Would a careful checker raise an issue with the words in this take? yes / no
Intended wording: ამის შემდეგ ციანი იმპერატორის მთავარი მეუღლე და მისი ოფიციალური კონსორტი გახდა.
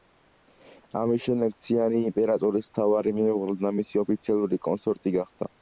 no